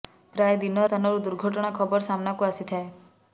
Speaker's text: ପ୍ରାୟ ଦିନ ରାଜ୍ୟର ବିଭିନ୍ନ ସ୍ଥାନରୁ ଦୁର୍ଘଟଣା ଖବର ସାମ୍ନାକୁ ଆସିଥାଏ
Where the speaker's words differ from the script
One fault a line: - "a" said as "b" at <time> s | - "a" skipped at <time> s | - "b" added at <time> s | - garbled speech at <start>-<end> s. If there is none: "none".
- "ରାଜ୍ୟର ବିଭିନ୍ନ" skipped at 0.8 s